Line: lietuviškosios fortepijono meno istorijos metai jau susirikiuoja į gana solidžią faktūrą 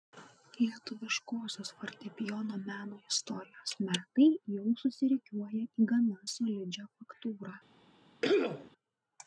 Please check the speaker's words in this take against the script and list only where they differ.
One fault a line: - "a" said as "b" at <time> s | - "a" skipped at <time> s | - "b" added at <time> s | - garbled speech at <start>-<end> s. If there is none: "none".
none